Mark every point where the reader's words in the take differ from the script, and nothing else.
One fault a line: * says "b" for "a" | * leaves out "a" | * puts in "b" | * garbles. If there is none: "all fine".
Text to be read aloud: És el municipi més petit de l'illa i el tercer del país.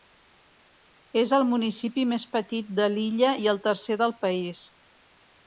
all fine